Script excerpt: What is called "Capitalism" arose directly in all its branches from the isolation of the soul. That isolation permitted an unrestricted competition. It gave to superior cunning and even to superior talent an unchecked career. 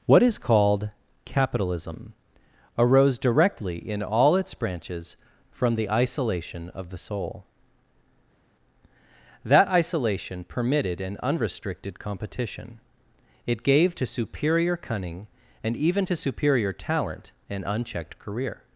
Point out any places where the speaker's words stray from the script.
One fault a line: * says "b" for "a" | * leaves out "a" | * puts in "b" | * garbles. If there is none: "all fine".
all fine